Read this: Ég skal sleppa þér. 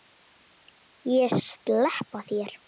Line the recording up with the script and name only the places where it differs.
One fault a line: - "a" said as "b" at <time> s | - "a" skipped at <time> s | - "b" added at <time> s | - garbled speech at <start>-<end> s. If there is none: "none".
- "skal" skipped at 1.4 s